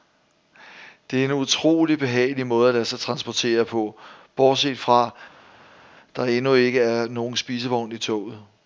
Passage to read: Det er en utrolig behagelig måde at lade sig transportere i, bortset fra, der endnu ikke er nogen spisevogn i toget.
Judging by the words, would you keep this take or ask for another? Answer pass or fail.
fail